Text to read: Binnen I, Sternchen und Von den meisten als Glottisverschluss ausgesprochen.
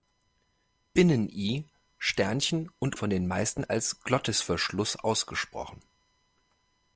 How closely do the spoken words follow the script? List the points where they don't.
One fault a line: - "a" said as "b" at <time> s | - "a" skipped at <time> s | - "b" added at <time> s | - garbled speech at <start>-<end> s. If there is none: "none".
none